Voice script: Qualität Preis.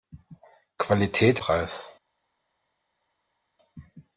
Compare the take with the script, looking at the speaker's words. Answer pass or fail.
pass